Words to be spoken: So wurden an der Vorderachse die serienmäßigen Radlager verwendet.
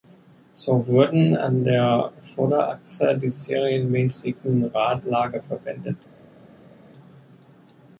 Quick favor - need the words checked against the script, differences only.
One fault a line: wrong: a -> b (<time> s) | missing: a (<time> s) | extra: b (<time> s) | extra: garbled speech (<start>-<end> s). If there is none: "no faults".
no faults